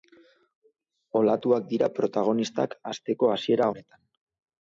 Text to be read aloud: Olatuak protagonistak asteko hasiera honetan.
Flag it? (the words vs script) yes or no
yes